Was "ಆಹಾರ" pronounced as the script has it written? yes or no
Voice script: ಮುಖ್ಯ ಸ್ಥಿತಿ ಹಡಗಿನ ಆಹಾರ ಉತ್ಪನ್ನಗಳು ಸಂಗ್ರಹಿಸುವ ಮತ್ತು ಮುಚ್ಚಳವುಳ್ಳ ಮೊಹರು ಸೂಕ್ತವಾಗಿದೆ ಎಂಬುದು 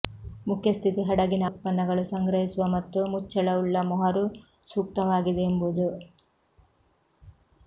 no